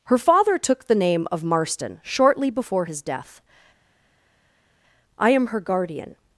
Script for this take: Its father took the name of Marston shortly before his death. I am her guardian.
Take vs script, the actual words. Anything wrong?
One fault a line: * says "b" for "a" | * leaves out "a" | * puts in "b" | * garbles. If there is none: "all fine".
* says "Her" for "Its"